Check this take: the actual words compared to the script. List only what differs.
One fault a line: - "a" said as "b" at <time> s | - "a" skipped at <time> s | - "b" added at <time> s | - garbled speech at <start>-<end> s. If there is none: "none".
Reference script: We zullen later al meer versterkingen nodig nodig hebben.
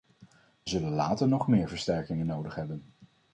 - "al" said as "nog" at 1.3 s
- "nodig" skipped at 2.5 s